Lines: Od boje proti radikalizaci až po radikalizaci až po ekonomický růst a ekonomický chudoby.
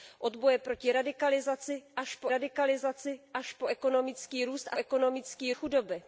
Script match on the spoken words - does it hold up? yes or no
yes